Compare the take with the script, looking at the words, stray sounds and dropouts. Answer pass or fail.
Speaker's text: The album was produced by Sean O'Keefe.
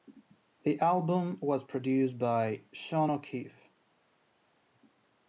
pass